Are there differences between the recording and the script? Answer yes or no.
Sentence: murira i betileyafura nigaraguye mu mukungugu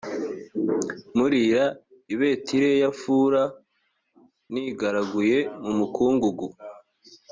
no